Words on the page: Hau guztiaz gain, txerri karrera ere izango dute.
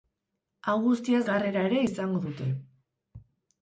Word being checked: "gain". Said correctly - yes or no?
no